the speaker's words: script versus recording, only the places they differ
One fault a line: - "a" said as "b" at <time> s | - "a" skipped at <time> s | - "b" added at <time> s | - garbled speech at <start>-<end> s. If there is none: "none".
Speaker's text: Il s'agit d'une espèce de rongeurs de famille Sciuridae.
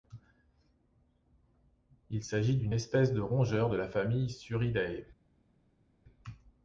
- "la" added at 3.8 s